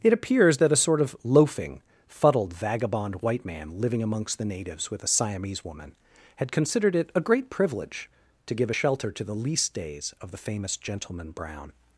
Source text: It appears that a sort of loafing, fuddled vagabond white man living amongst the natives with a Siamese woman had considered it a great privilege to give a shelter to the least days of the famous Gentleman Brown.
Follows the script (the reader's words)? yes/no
yes